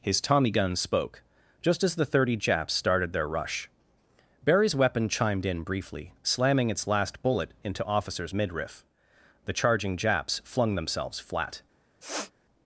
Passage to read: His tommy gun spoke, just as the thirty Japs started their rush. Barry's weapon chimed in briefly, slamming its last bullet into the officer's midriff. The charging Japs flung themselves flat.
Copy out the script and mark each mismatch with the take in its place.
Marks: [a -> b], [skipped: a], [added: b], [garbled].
His tommy gun spoke, just as the thirty Japs started their rush. Barry's weapon chimed in briefly, slamming its last bullet into [skipped: the] officer's midriff. The charging Japs flung themselves flat.